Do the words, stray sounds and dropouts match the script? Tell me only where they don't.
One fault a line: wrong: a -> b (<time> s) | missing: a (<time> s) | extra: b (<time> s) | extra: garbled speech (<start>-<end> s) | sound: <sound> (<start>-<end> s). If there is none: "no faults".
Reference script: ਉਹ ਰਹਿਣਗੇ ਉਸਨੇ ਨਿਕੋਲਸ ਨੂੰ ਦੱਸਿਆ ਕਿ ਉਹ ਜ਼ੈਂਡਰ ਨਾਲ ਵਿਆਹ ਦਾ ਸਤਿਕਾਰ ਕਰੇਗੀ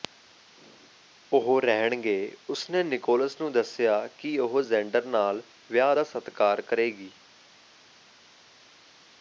no faults